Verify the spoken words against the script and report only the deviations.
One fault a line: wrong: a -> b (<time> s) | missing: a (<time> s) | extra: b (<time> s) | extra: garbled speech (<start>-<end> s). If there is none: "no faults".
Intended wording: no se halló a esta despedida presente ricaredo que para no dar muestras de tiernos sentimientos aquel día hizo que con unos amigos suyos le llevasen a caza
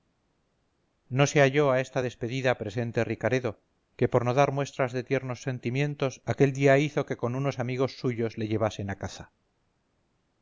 wrong: para -> por (4.1 s)